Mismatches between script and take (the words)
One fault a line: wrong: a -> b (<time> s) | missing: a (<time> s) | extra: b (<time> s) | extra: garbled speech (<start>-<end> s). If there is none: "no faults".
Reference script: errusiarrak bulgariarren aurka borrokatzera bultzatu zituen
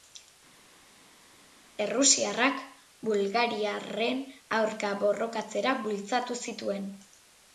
no faults